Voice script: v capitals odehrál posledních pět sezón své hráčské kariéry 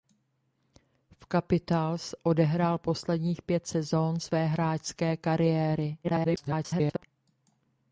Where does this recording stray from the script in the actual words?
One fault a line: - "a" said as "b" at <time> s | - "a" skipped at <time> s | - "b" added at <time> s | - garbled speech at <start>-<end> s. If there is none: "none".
- garbled speech at 6.0-7.0 s